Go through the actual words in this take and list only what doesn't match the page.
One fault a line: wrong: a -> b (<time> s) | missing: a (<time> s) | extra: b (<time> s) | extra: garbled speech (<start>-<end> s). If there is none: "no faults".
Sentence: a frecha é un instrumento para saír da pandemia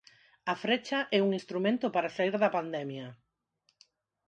no faults